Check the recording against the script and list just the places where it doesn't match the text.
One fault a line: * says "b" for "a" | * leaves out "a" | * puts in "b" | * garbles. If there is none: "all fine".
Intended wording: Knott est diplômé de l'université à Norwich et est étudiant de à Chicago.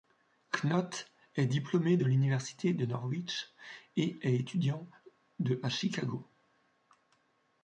* says "de" for "à"